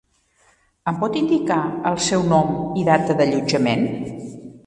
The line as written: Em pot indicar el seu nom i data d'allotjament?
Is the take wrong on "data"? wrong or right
right